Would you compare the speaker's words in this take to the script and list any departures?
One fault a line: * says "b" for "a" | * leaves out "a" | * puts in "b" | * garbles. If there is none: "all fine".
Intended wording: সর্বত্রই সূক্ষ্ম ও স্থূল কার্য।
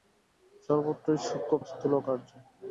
all fine